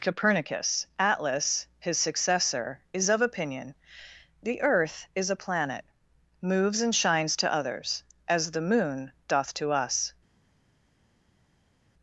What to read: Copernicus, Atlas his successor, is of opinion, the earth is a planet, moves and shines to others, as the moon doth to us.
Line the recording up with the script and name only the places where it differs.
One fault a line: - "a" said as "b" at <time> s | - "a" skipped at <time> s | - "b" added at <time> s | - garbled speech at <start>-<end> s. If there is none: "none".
none